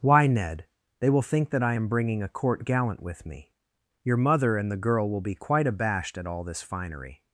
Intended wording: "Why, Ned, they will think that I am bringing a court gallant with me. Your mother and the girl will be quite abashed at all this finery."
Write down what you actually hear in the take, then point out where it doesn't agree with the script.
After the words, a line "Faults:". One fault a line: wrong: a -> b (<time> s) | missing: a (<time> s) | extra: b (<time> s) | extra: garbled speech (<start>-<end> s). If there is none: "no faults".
"Why, Ned, they will think that I am bringing a court gallant with me. Your mother and the girl will be quite abashed at all this finery."
Faults:
no faults